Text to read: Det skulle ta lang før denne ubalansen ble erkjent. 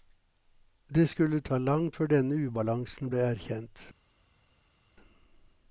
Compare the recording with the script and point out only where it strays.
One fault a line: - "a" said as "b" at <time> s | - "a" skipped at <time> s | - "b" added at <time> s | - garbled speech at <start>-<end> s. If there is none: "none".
none